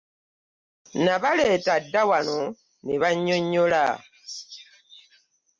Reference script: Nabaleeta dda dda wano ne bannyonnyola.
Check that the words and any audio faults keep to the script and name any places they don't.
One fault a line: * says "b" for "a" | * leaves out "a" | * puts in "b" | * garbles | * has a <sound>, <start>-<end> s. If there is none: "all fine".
* leaves out "dda"